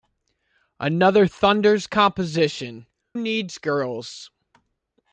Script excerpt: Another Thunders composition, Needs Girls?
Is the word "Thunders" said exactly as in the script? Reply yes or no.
yes